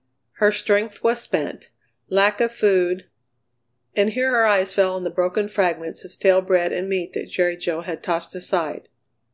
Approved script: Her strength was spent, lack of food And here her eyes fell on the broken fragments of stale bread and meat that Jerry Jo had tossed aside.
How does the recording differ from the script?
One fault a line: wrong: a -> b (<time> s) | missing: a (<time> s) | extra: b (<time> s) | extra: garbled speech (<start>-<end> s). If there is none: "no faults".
no faults